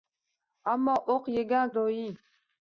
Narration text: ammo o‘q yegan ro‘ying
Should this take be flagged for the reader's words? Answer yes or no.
no